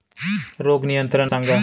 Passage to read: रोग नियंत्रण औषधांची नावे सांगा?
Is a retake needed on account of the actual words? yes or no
yes